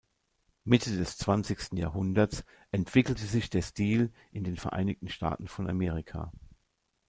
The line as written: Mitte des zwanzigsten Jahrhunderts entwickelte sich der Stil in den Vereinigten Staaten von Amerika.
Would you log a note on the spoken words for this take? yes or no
no